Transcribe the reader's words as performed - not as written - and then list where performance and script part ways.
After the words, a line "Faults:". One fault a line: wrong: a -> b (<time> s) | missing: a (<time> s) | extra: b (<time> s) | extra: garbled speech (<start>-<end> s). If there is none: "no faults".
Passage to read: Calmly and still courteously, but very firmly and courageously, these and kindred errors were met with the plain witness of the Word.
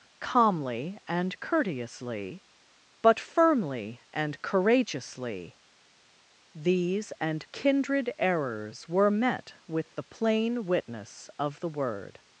Calmly and courteously, but firmly and courageously, these and kindred errors were met with the plain witness of the Word.
Faults:
missing: still (1.4 s)
missing: very (3.2 s)